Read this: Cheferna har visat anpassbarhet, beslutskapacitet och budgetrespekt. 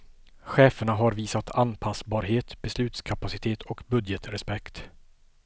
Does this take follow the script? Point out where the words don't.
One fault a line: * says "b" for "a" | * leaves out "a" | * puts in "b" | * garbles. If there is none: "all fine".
all fine